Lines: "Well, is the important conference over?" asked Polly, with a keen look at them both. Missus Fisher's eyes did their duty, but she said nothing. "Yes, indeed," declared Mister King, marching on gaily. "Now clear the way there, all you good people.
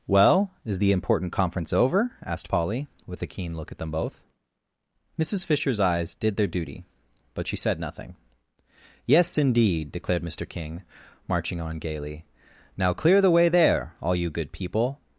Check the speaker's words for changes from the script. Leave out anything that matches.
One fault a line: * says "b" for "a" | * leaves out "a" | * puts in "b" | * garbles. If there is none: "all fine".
all fine